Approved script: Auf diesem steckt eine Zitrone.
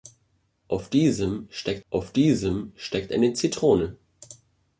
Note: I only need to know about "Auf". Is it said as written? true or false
true